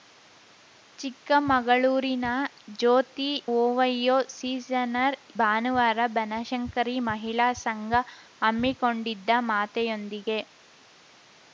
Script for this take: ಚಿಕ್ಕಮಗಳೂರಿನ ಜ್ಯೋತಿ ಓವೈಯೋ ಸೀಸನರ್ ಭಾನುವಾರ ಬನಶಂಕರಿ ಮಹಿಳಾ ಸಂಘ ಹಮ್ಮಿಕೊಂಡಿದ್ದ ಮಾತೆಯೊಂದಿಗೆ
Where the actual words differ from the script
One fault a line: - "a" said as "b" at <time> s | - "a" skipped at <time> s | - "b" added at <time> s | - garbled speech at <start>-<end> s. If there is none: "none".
none